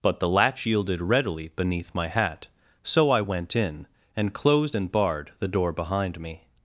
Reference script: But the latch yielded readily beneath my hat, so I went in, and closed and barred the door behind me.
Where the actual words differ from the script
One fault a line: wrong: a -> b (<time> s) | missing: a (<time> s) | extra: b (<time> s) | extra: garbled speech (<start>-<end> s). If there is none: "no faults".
no faults